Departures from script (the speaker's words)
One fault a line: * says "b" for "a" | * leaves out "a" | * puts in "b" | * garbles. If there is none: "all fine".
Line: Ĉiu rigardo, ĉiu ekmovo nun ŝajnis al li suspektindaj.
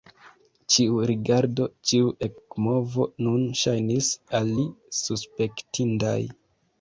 all fine